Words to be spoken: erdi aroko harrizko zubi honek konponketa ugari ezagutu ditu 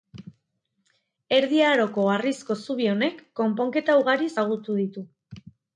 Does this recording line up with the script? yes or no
yes